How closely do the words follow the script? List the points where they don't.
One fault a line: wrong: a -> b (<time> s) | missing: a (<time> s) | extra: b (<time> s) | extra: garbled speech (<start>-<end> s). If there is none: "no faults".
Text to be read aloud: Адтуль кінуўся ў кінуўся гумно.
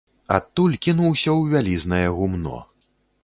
wrong: кінуўся -> вялізнае (1.5 s)